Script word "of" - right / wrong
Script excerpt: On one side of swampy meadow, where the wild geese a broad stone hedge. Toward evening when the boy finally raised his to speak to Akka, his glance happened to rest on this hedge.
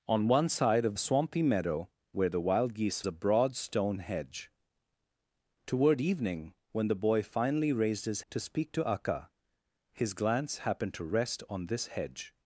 right